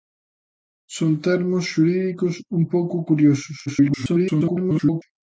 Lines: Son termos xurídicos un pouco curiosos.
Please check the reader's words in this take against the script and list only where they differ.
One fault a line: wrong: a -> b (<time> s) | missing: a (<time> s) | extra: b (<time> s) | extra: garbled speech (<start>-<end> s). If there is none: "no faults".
extra: garbled speech (3.7-5.0 s)